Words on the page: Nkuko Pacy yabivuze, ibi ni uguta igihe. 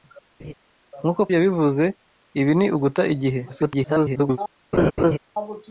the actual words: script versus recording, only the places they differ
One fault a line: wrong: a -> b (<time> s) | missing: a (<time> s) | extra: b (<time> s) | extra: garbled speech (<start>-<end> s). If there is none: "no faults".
missing: Pacy (1.2 s)
extra: garbled speech (3.5-4.4 s)